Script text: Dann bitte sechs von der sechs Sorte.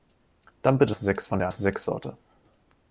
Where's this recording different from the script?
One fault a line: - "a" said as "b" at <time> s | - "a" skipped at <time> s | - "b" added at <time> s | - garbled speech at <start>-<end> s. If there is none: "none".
none